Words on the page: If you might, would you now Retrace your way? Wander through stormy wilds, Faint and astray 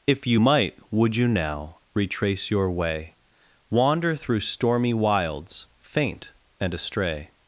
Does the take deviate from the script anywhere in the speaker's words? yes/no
no